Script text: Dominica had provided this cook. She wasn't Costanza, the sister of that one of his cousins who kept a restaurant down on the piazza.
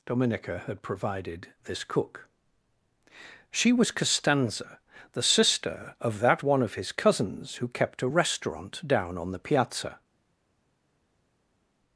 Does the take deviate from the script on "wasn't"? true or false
true